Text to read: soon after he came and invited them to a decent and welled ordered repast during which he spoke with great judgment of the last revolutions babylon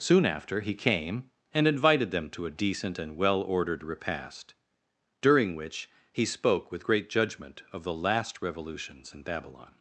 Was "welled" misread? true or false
true